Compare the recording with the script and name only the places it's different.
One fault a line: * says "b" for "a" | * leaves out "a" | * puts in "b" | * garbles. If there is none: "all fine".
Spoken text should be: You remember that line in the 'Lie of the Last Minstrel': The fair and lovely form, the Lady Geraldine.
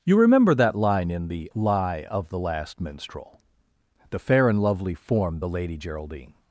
all fine